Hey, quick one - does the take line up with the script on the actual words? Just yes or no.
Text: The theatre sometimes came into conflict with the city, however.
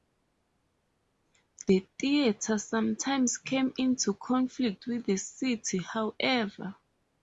yes